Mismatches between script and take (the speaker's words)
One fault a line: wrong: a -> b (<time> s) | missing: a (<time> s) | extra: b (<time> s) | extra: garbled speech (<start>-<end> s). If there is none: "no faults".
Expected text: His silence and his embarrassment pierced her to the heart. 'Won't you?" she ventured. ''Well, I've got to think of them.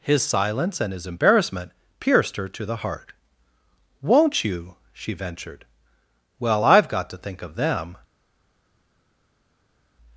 no faults